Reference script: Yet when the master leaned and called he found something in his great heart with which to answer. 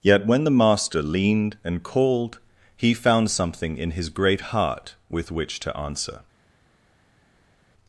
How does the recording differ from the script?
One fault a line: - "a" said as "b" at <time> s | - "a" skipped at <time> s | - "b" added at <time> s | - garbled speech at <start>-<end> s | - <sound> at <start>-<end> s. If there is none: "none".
none